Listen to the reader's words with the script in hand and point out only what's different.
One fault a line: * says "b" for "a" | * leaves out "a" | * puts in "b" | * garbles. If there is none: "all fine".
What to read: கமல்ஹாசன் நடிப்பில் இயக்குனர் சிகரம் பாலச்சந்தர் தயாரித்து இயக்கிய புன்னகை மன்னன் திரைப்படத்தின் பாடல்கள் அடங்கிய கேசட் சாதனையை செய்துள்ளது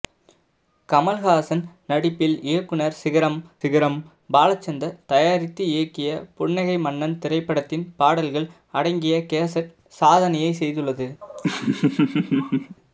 * puts in "சிகரம்"